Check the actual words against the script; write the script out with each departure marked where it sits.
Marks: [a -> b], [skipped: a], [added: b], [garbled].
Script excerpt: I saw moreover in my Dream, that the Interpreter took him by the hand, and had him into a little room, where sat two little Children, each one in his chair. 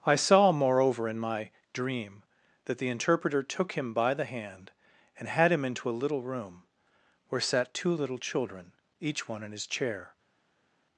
I saw moreover in my Dream, that the Interpreter took him by the hand, and had him into a little room, where sat two little Children, each one in his chair.